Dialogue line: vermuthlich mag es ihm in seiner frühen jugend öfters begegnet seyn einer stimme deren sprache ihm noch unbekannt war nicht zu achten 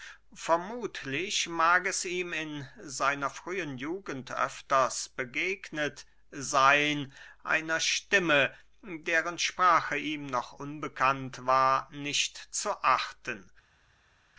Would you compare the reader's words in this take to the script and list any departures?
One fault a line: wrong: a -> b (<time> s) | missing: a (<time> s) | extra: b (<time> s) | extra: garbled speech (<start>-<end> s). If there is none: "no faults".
no faults